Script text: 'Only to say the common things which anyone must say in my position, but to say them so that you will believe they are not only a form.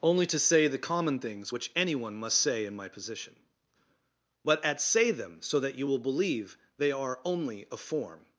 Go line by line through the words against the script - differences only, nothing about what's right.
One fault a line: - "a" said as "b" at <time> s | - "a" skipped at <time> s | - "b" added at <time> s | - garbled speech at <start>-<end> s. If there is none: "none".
- "to" said as "at" at 4.6 s
- "not" skipped at 7.2 s